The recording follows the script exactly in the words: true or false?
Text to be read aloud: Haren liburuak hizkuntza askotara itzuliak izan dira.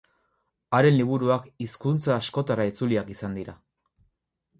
true